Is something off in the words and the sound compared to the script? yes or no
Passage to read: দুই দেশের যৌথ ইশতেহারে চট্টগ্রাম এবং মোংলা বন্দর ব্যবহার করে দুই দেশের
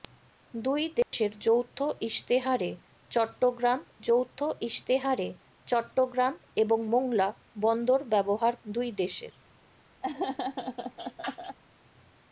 yes